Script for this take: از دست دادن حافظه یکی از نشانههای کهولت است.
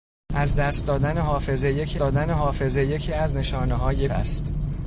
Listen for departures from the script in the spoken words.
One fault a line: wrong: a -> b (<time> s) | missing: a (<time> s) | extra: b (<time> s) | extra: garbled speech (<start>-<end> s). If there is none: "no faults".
extra: دادن حافظه یکی (2.0 s)
missing: کهولت (4.1 s)